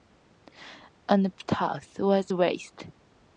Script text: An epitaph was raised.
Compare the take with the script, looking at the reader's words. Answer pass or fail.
pass